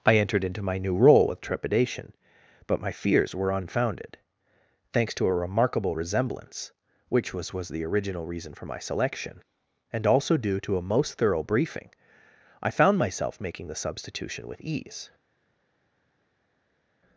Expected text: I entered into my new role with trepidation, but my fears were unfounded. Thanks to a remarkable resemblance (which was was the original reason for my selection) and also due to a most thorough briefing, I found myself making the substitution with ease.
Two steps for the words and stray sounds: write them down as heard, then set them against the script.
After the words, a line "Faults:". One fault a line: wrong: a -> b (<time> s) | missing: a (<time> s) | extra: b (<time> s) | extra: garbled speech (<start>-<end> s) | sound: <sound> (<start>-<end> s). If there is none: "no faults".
I entered into my new role with trepidation, but my fears were unfounded. Thanks to a remarkable resemblance (which was was the original reason for my selection) and also due to a most thorough briefing, I found myself making the substitution with ease.
Faults:
no faults